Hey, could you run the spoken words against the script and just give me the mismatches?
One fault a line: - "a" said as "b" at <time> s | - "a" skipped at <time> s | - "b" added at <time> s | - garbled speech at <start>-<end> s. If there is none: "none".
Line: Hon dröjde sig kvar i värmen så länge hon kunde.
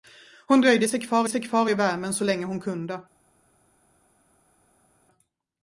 - "sig kvar" added at 1.3 s